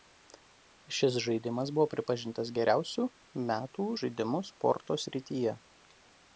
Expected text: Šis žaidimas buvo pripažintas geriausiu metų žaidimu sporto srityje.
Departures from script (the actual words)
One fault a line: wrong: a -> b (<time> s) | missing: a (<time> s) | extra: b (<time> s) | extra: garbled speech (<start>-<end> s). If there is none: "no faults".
no faults